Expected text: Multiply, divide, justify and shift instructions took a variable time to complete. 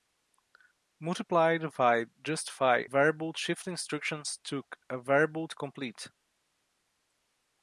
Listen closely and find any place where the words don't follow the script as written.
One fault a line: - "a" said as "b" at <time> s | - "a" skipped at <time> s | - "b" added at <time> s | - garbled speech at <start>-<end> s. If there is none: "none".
- "and" said as "variable" at 2.8 s
- "time" skipped at 5.5 s